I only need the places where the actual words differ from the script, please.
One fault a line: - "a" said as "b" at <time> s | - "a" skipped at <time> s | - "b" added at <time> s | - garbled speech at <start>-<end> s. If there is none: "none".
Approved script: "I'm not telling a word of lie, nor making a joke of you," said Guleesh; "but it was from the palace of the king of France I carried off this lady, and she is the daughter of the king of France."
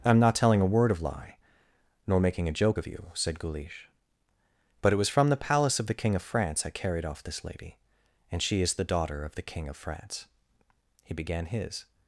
- "He began his" added at 11.0 s